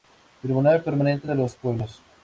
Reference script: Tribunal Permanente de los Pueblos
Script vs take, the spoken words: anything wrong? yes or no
no